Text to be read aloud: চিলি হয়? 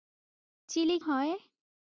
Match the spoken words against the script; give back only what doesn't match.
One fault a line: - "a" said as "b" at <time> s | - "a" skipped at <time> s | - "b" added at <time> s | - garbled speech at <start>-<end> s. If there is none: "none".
none